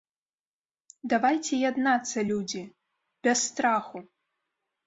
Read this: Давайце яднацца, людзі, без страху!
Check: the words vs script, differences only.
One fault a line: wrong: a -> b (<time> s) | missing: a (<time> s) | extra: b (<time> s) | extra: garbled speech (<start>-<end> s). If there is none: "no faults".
no faults